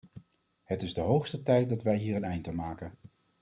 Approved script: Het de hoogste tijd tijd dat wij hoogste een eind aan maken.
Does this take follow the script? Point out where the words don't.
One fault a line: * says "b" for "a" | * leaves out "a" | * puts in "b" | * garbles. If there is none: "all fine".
* puts in "is"
* leaves out "tijd"
* says "hier" for "hoogste"